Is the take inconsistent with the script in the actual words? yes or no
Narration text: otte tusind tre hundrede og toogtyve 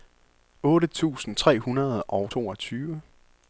no